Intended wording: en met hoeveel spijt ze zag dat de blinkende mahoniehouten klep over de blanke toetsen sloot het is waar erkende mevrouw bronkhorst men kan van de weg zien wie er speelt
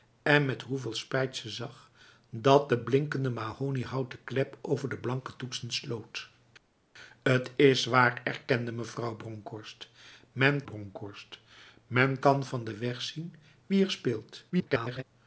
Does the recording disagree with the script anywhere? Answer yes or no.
yes